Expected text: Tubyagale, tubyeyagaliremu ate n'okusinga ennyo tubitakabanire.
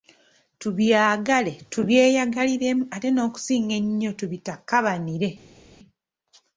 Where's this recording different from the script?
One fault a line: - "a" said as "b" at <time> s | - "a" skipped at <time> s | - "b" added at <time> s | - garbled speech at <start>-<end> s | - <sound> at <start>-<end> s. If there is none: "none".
none